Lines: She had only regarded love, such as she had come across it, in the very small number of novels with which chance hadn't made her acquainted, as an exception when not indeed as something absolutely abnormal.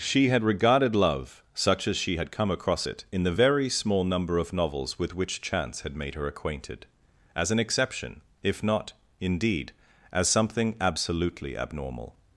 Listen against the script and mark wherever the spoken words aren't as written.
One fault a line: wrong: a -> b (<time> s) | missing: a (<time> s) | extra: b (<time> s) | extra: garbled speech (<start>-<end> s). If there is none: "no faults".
missing: only (0.4 s)
wrong: hadn't -> had (5.8 s)
wrong: when -> if (8.4 s)